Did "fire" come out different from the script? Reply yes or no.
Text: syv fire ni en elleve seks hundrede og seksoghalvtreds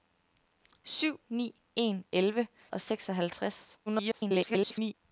yes